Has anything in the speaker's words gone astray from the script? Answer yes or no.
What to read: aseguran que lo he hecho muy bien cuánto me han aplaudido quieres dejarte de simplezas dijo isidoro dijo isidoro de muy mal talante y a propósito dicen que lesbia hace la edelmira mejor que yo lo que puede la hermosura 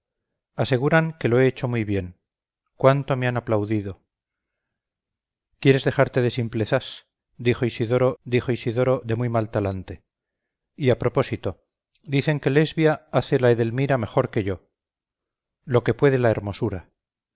no